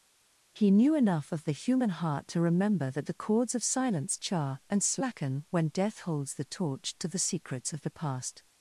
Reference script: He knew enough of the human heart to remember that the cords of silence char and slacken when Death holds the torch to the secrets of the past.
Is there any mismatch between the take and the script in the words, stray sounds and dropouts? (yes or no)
no